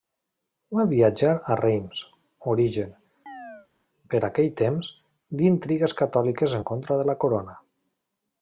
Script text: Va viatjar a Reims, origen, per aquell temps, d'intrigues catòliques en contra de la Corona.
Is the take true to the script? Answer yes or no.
yes